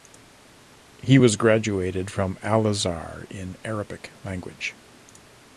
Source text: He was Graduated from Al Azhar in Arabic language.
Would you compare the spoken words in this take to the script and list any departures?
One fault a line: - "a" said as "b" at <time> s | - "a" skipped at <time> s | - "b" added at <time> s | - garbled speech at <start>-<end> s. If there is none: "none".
none